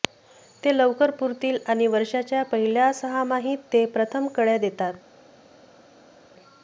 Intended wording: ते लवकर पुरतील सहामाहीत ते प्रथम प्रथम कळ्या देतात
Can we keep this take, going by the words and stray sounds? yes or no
no